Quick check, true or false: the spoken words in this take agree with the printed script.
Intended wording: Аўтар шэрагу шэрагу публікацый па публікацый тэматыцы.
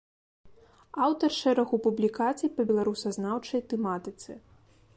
false